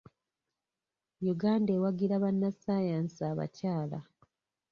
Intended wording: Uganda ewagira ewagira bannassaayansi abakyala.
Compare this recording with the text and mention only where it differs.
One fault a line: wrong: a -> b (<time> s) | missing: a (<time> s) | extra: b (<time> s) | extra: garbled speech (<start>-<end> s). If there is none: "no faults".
missing: ewagira (2.1 s)